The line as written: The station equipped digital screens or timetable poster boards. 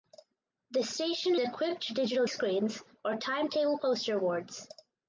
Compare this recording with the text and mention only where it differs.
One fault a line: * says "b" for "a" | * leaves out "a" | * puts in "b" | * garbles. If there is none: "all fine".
all fine